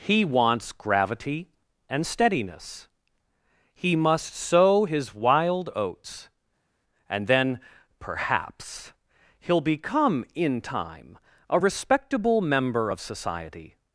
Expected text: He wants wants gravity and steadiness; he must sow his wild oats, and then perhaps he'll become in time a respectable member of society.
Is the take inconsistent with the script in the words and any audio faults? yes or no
yes